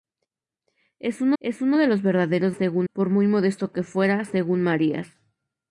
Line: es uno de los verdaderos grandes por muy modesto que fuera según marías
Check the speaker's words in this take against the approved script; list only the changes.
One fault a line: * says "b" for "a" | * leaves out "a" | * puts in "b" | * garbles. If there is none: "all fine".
* puts in "es uno"
* says "según" for "grandes"